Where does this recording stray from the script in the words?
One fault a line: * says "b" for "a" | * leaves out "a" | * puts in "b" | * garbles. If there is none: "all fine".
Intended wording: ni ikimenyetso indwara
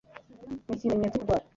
all fine